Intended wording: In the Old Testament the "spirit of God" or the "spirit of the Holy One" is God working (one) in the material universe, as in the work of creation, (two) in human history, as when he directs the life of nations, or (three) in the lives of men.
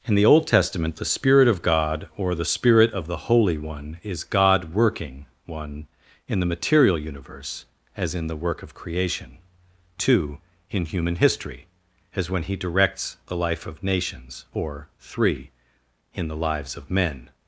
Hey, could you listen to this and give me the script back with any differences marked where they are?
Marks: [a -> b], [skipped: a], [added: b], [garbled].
In the Old Testament the "spirit of God" or the "spirit of the Holy One" is God working (one) in the material universe, as in the work of creation, (two) in human history, as when he directs the life of nations, or (three) in the lives of men.